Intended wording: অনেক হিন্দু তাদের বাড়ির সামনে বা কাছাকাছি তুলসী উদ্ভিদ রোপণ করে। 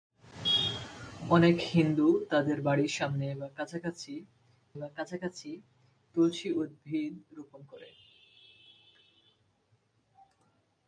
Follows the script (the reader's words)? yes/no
no